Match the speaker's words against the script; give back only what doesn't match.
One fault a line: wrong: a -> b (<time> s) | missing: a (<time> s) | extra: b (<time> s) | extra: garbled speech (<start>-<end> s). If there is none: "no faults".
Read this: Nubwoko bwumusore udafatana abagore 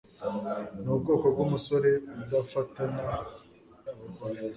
no faults